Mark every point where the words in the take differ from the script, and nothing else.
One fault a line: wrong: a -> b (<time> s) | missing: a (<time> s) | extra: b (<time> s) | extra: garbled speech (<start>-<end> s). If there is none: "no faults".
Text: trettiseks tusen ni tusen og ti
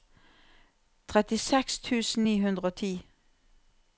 wrong: tusen -> hundre (2.5 s)